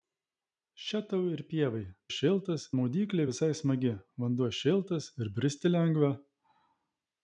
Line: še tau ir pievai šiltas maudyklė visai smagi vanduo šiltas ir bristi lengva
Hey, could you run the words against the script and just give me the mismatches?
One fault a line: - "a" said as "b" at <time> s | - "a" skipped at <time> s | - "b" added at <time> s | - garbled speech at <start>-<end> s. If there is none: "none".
none